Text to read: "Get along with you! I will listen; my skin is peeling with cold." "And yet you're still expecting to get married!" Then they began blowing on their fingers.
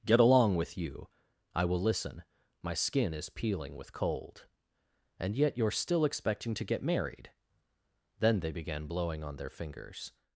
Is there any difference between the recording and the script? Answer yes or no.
no